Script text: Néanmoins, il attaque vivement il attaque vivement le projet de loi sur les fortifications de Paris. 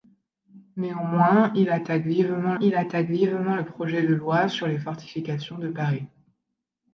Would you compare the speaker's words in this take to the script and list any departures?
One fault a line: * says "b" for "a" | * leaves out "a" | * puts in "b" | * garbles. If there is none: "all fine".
all fine